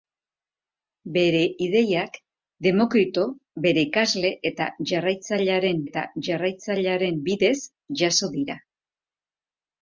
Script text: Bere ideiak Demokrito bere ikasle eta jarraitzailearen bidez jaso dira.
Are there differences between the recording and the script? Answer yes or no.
yes